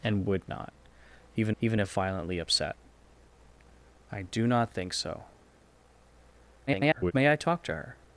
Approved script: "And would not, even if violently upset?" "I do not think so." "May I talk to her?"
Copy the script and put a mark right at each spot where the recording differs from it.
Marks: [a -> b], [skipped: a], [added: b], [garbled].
"And would not, even [added: even] if violently upset?" "I do not think so." [garbled] "May I talk to her?"